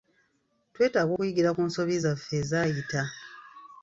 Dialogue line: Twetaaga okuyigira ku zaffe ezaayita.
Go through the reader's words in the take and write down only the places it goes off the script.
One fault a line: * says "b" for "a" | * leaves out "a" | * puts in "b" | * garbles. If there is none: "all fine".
* puts in "nsobi"